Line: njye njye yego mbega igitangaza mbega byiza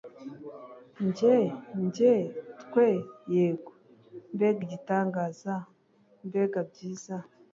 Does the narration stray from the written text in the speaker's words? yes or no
yes